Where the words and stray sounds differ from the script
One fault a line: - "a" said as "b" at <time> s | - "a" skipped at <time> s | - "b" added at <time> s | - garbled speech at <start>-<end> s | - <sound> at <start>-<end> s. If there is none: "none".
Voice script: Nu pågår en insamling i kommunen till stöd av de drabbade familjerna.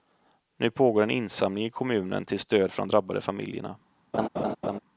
- "av" said as "för" at 2.7 s
- laugh at 4.1-4.8 s